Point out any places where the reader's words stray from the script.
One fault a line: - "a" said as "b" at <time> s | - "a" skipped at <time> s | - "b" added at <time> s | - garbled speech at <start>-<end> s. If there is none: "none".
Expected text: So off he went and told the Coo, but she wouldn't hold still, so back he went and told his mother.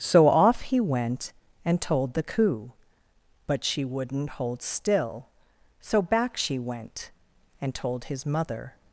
- "he" said as "she" at 6.4 s